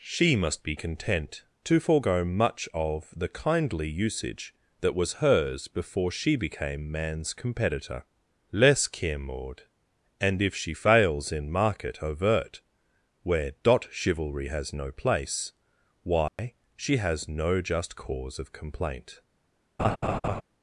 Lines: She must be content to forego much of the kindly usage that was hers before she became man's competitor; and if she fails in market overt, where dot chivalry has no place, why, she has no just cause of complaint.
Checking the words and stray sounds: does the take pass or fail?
fail